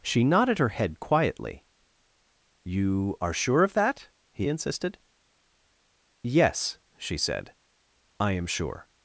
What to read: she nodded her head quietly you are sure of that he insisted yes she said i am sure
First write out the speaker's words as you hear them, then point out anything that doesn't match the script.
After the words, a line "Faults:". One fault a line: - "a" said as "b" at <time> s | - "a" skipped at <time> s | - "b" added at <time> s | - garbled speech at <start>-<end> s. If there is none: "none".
she nodded her head quietly you are sure of that he insisted yes she said i am sure
Faults:
none